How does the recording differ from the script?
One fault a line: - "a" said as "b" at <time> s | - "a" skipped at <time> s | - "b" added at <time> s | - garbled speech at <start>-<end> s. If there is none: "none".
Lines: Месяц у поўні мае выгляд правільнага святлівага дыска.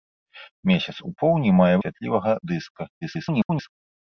- "выгляд правільнага" skipped at 1.7 s
- garbled speech at 3.0-3.7 s